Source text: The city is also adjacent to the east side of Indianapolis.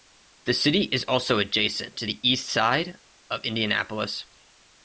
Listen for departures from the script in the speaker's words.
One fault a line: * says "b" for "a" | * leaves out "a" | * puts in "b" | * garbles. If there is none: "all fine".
all fine